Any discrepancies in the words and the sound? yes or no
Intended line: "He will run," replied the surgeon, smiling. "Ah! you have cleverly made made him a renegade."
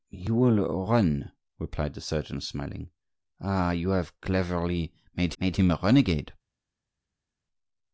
no